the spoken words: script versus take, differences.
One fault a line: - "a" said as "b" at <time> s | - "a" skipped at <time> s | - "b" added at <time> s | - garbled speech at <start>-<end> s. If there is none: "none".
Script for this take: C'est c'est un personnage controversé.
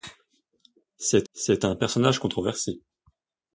none